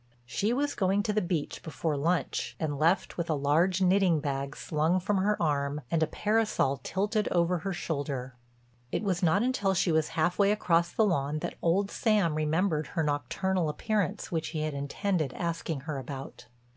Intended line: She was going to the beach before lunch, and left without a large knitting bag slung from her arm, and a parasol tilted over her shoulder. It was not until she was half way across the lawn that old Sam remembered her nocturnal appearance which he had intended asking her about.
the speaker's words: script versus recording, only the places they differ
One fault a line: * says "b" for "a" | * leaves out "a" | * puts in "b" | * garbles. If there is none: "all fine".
* says "with" for "without"